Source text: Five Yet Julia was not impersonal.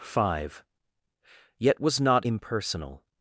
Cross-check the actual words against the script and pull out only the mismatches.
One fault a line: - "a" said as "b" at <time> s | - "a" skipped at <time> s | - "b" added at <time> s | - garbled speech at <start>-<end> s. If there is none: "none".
- "Julia" skipped at 1.8 s